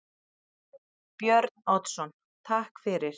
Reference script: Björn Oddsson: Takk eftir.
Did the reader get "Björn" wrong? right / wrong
right